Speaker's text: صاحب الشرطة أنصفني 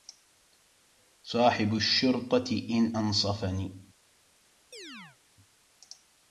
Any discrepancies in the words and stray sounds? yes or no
yes